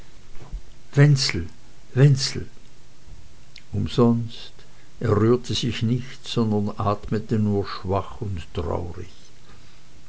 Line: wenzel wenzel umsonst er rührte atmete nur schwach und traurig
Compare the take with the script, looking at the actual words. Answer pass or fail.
fail